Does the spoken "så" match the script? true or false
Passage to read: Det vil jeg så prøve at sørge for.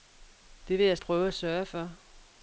false